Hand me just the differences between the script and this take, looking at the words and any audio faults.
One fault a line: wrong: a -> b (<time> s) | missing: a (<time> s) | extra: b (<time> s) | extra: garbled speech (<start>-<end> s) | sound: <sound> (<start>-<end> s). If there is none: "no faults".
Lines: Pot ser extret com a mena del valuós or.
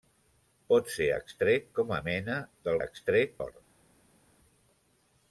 wrong: valuós -> extret (2.8 s)